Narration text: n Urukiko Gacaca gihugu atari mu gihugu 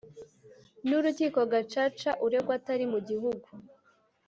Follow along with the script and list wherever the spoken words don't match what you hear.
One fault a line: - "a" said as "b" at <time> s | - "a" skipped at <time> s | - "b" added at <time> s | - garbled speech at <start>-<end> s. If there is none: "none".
- "gihugu" said as "uregwa" at 2.2 s